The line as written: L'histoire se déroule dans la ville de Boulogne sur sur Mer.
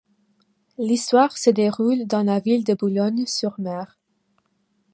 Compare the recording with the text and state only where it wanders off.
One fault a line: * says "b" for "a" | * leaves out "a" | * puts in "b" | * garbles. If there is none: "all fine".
* leaves out "sur"